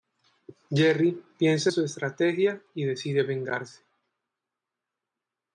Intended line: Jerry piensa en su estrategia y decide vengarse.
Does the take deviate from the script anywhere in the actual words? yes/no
yes